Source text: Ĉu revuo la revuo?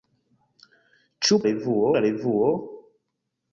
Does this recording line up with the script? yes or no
yes